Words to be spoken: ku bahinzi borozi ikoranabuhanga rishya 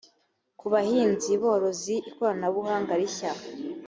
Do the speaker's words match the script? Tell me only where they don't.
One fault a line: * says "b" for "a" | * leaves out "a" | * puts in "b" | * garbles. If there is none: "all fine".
all fine